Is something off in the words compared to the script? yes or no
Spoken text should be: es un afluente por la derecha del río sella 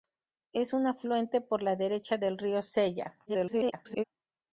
yes